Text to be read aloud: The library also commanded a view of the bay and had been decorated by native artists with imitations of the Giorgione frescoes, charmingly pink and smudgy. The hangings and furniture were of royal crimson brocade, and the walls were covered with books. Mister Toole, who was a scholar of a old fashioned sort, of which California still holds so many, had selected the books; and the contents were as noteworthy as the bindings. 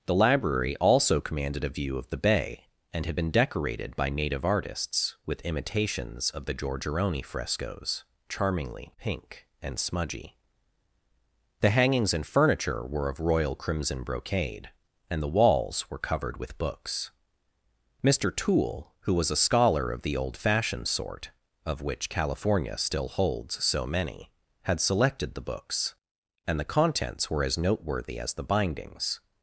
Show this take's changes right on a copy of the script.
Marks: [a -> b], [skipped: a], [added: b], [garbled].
The library also commanded a view of the bay and had been decorated by native artists with imitations of the Giorgione frescoes, charmingly pink and smudgy. The hangings and furniture were of royal crimson brocade, and the walls were covered with books. Mister Toole, who was a scholar of [a -> the] old fashioned sort, of which California still holds so many, had selected the books; and the contents were as noteworthy as the bindings.